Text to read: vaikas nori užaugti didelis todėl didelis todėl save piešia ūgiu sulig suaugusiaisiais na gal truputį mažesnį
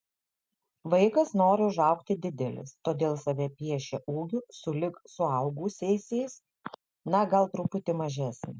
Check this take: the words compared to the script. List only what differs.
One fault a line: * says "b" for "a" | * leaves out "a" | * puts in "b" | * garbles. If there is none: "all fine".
* leaves out "didelis todėl"